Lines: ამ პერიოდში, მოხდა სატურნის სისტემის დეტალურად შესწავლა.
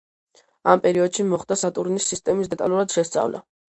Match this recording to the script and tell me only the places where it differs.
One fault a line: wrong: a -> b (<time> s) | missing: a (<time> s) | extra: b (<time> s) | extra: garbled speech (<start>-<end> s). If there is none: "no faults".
no faults